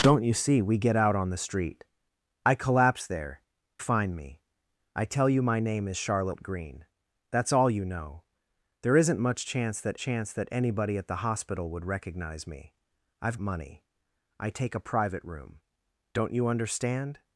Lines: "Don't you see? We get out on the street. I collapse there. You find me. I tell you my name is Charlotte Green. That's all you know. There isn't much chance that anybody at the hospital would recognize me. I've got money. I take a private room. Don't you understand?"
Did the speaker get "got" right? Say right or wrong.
wrong